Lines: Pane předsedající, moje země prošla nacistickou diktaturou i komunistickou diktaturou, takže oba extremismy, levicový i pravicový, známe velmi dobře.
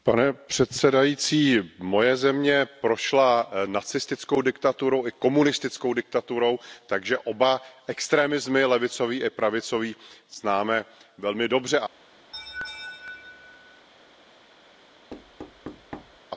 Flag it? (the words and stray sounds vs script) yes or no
yes